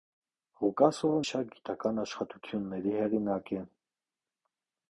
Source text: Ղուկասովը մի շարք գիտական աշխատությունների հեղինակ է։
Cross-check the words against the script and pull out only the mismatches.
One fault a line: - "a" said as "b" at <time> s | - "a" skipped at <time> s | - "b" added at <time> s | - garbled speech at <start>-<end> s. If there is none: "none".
- "մի" skipped at 1.2 s